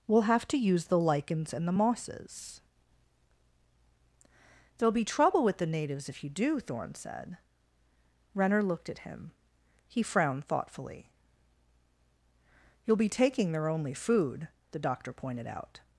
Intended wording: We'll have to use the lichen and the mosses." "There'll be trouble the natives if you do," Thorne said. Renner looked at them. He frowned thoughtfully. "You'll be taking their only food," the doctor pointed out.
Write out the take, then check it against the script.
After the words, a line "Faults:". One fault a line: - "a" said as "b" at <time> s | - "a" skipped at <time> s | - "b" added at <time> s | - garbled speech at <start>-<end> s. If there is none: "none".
We'll have to use the lichens and the mosses." "There'll be trouble with the natives if you do," Thorne said. Renner looked at him. He frowned thoughtfully. "You'll be taking their only food," the doctor pointed out.
Faults:
- "lichen" said as "lichens" at 1.0 s
- "with" added at 5.4 s
- "them" said as "him" at 9.0 s